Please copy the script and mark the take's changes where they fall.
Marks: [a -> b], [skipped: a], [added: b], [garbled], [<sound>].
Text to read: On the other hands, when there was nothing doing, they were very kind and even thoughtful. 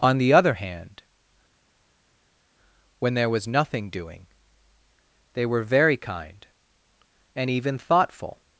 On the other [hands, -> hand] when there was nothing doing, they were very kind and even thoughtful.